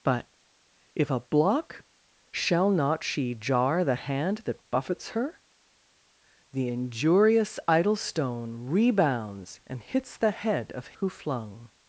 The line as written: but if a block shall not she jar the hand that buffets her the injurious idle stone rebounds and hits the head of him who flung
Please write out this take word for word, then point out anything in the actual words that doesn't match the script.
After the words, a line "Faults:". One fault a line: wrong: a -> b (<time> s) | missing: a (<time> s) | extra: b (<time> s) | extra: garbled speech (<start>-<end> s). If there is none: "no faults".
but if a block shall not she jar the hand that buffets her the injurious idle stone rebounds and hits the head of who flung
Faults:
missing: him (11.0 s)